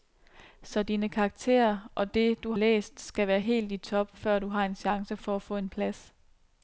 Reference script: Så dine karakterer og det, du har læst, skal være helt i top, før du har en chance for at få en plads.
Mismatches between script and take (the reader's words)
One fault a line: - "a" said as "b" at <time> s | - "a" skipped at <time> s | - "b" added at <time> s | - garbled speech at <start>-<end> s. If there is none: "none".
- "har" skipped at 2.5 s